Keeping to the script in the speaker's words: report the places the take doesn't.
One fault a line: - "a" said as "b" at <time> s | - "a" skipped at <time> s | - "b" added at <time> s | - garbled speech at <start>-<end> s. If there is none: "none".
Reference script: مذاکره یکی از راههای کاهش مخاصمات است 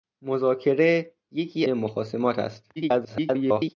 - "از راههای کاهش" skipped at 1.7 s
- garbled speech at 2.8-3.7 s